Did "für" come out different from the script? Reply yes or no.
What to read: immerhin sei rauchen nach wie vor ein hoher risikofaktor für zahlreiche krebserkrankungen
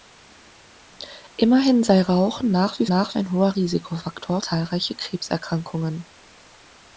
yes